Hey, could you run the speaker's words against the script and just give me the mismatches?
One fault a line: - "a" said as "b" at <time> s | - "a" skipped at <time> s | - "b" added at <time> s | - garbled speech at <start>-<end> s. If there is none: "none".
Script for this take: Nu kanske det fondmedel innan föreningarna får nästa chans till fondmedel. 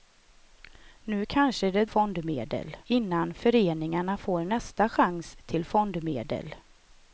none